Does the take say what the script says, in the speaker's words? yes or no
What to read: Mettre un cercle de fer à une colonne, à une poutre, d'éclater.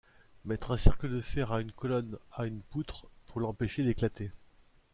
no